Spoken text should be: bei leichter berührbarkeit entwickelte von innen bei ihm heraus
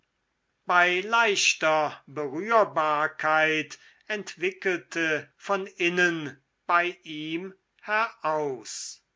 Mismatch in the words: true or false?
false